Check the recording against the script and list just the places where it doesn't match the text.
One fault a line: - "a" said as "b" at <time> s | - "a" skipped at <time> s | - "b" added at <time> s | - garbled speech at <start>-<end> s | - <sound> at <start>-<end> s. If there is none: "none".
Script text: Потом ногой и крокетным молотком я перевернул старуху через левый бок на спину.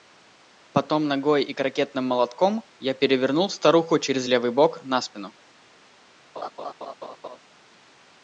- laugh at 6.4-7.4 s